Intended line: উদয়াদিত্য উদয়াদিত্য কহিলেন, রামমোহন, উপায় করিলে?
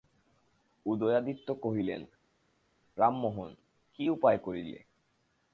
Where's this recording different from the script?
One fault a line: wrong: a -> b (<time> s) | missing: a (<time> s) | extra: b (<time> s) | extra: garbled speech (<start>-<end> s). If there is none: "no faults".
missing: উদয়াদিত্য (1.5 s)
extra: কী (3.9 s)